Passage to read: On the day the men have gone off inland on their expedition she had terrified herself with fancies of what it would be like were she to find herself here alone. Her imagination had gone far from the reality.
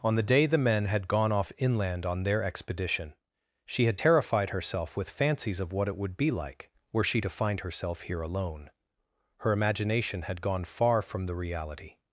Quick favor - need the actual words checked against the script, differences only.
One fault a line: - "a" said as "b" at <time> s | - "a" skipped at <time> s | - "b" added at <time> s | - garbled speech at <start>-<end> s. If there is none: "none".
- "have" said as "had" at 0.8 s